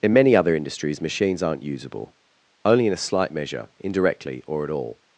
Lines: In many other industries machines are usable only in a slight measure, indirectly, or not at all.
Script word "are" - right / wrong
wrong